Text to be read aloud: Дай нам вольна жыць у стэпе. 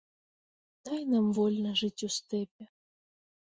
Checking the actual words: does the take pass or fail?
pass